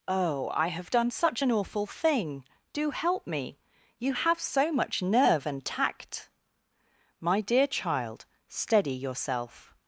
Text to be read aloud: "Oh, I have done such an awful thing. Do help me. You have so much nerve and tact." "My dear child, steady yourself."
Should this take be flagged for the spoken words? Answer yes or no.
no